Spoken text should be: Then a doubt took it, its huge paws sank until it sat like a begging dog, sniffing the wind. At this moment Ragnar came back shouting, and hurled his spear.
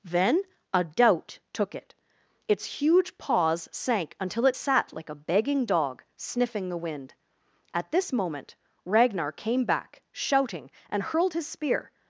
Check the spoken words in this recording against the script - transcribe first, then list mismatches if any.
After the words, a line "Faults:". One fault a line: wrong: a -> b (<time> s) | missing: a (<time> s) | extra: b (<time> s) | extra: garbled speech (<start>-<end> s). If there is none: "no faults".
Then a doubt took it, its huge paws sank until it sat like a begging dog, sniffing the wind. At this moment Ragnar came back shouting, and hurled his spear.
Faults:
no faults